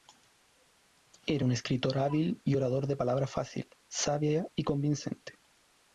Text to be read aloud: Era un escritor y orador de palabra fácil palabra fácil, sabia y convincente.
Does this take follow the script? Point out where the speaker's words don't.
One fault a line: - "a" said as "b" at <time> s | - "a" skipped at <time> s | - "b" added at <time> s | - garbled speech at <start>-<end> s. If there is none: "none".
- "hábil" added at 2.0 s
- "palabra fácil" skipped at 3.7 s